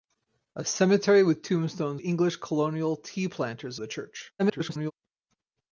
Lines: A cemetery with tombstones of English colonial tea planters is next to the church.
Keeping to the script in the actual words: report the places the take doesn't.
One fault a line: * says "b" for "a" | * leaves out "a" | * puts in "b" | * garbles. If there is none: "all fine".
* leaves out "of"
* leaves out "is next to"
* garbles